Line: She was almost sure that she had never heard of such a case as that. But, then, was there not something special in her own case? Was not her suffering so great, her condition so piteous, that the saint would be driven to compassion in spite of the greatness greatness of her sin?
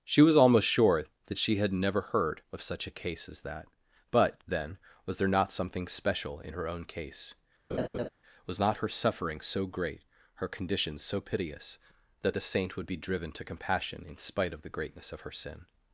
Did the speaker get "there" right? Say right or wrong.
right